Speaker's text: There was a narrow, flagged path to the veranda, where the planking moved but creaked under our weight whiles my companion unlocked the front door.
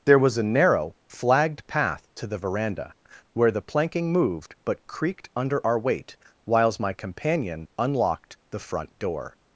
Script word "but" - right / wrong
right